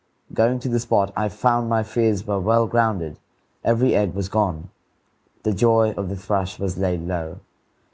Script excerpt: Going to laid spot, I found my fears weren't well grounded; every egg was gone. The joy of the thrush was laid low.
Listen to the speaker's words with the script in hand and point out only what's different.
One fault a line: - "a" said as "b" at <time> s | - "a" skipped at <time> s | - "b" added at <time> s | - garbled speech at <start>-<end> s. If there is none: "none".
- "laid" said as "the" at 0.7 s
- "weren't" said as "were" at 2.2 s